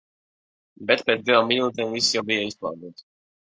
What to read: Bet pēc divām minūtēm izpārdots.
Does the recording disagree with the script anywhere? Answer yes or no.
yes